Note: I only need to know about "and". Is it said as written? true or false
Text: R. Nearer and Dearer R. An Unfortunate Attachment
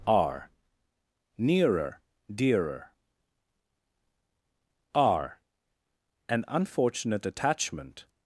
false